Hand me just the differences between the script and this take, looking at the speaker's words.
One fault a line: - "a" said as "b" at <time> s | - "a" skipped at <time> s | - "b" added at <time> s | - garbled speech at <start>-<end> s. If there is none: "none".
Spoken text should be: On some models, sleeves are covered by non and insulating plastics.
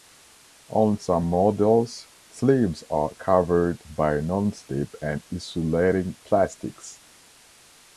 - "slip" added at 4.5 s